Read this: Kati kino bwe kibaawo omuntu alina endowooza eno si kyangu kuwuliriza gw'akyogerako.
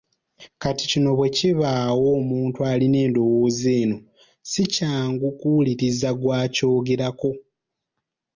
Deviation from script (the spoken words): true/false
false